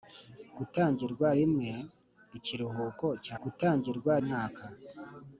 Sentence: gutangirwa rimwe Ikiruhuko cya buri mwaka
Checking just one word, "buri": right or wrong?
wrong